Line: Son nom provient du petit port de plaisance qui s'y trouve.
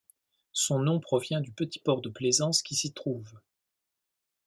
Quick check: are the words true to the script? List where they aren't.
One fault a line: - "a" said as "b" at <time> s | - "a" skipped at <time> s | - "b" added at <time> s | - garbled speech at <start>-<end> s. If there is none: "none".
none